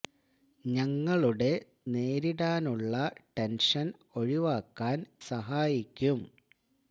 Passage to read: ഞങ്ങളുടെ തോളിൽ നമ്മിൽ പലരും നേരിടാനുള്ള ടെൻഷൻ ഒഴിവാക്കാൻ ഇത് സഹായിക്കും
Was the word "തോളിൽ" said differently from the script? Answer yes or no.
yes